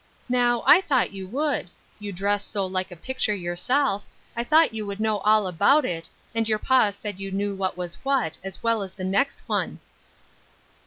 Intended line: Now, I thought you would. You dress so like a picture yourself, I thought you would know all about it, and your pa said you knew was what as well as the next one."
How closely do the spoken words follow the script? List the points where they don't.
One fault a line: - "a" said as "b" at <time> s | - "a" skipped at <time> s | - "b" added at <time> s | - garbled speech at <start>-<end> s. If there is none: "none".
- "what" added at 7.5 s